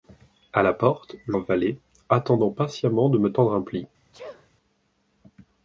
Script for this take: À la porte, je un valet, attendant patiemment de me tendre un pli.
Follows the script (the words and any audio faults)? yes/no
no